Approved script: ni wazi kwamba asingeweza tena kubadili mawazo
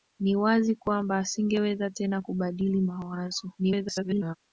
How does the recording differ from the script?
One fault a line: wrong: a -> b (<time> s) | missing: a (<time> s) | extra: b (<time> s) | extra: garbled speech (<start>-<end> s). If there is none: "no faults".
extra: garbled speech (3.6-4.4 s)